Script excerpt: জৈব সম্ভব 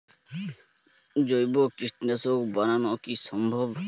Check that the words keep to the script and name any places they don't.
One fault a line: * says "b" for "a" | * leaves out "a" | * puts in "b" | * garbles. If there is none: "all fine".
* puts in "কীটনাশক বানানো কি"